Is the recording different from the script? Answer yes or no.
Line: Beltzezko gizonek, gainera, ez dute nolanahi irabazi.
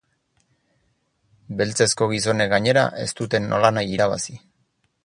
no